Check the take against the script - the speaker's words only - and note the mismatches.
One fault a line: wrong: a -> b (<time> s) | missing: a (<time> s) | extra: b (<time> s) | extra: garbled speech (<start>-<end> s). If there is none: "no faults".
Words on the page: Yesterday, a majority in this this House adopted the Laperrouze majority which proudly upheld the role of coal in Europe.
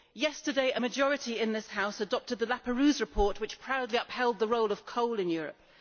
missing: this (1.7 s)
wrong: majority -> report (3.0 s)